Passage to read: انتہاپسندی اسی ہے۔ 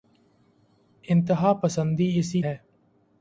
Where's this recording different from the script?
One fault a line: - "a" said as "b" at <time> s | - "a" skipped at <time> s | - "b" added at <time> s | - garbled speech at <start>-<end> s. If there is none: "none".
none